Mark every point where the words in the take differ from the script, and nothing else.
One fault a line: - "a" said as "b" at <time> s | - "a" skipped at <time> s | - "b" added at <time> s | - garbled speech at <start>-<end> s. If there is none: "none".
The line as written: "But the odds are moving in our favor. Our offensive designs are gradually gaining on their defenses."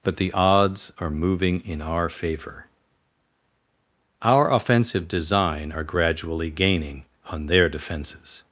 - "designs" said as "design" at 5.1 s